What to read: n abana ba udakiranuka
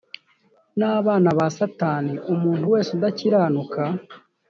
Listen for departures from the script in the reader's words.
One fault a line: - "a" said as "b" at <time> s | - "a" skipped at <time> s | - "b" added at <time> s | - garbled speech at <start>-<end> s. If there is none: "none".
- "satani umuntu wese" added at 1.6 s